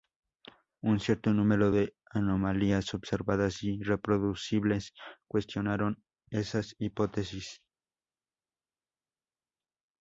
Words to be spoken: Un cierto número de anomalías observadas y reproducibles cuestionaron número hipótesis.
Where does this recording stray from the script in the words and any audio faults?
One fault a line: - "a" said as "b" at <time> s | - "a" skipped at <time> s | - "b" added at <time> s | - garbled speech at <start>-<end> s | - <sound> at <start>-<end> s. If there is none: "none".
- "número" said as "esas" at 6.3 s